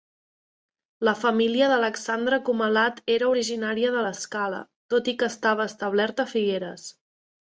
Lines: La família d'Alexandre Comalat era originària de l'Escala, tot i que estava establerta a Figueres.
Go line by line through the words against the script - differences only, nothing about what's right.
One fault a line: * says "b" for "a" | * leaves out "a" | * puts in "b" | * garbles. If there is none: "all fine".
all fine